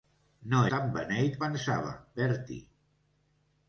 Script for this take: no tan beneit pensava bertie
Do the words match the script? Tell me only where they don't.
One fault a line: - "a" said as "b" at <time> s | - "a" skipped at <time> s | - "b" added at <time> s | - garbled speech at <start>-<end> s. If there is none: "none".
none